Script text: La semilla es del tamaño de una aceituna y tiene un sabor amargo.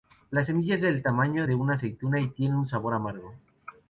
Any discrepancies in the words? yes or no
no